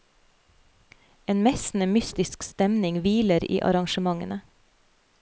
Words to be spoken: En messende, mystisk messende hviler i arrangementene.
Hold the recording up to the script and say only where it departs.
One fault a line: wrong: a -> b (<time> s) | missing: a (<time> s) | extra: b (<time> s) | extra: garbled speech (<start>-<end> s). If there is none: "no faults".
wrong: messende -> stemning (2.4 s)